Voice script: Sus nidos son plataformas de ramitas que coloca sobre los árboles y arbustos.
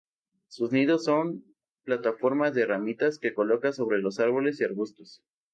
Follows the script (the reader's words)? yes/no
yes